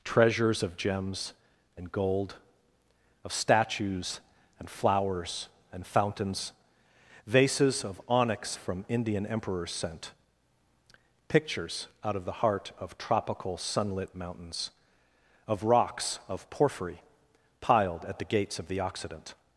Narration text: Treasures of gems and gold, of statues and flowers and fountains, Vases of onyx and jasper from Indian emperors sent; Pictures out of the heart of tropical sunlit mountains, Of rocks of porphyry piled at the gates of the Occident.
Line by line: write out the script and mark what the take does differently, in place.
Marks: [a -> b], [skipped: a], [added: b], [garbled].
Treasures of gems and gold, of statues and flowers and fountains, Vases of onyx [skipped: and jasper] from Indian emperors sent; Pictures out of the heart of tropical sunlit mountains, Of rocks of porphyry piled at the gates of the Occident.